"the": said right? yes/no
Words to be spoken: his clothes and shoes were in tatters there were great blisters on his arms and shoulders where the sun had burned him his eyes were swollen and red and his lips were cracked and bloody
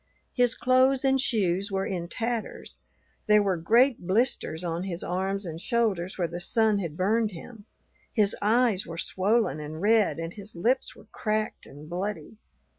yes